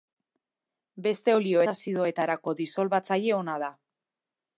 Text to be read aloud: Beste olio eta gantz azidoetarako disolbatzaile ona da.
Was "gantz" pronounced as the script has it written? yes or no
no